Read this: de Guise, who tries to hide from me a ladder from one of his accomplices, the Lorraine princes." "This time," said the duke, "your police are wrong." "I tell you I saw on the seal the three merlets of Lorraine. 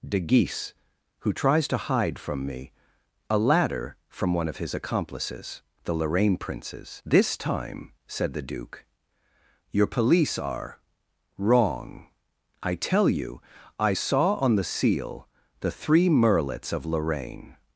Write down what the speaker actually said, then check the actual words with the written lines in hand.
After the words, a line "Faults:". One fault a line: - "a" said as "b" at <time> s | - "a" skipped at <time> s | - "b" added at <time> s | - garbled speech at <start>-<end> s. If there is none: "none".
de Guise, who tries to hide from me a ladder from one of his accomplices, the Lorraine princes." "This time," said the duke, "your police are wrong." "I tell you I saw on the seal the three merlets of Lorraine.
Faults:
none